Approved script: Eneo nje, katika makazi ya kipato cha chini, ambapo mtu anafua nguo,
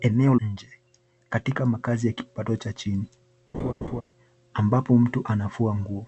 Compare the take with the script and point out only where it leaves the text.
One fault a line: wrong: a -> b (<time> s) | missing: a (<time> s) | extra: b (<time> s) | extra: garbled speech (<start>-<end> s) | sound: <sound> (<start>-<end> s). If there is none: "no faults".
sound: laugh (3.5-4.0 s)